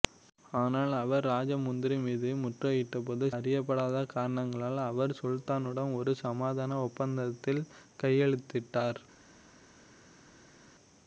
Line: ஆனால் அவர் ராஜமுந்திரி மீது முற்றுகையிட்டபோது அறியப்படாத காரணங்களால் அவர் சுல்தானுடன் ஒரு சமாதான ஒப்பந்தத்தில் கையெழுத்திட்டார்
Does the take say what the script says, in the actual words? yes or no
yes